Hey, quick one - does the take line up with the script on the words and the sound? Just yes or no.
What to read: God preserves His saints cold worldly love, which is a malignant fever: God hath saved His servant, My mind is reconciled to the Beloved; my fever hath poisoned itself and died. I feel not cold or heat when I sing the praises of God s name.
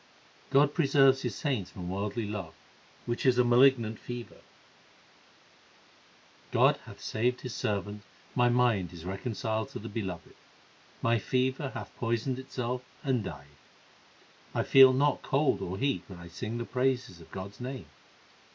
no